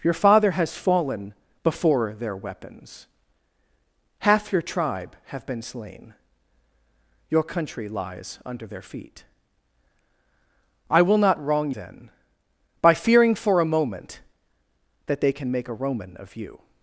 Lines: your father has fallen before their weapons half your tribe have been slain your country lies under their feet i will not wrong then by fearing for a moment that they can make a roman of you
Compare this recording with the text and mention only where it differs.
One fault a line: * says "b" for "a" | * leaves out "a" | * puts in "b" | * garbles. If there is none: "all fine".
all fine